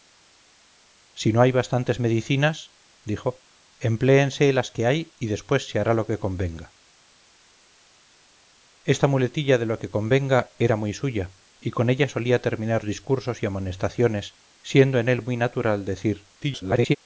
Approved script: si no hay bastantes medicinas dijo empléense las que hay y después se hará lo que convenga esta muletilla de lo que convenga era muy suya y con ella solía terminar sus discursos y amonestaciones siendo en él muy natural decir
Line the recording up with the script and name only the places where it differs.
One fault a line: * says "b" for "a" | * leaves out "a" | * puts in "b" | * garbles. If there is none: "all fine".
* leaves out "sus"
* garbles